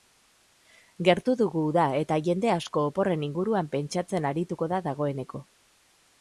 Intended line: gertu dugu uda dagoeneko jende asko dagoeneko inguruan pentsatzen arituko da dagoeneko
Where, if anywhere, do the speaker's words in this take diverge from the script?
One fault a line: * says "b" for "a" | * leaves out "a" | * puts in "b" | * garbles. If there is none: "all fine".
* says "eta" for "dagoeneko"
* says "oporren" for "dagoeneko"